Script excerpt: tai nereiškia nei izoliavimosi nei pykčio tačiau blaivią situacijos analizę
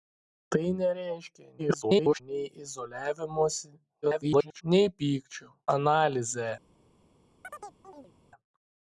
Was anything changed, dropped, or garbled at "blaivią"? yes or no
yes